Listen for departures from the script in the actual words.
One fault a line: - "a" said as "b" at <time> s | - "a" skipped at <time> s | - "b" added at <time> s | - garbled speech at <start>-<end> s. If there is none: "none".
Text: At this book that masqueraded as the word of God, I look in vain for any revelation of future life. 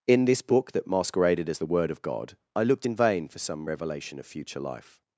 - "At" said as "In" at 0.1 s
- "look" said as "looked" at 2.6 s
- "any" said as "some" at 3.4 s